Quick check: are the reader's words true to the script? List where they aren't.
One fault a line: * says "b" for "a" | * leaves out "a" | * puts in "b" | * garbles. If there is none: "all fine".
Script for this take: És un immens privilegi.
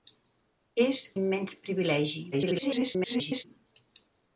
* leaves out "un"
* garbles